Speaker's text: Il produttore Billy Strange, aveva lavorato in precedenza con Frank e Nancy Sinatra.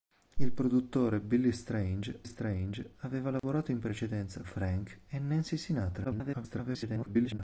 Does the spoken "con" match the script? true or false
false